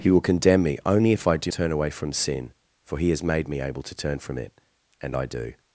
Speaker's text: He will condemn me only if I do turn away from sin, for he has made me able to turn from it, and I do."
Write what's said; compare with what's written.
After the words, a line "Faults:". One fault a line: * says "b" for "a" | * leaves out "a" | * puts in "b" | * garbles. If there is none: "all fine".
He will condemn me only if I do turn away from sin, for he has made me able to turn from it, and I do."
Faults:
all fine